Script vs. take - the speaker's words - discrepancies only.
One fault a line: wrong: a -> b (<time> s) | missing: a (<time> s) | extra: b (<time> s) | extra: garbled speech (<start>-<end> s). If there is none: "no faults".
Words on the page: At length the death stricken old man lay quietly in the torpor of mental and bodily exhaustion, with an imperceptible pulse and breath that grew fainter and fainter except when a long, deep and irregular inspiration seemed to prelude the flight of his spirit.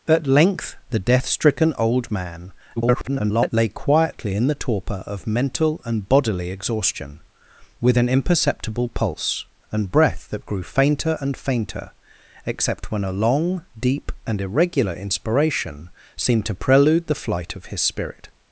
extra: garbled speech (2.8-3.5 s)